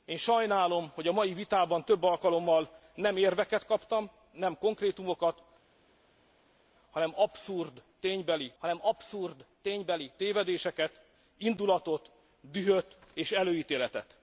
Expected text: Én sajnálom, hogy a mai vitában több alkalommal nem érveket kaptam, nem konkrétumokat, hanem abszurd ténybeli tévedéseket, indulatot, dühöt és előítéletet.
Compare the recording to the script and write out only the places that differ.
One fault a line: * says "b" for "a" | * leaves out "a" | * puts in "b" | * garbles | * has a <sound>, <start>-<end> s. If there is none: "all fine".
* puts in "hanem abszurd ténybeli"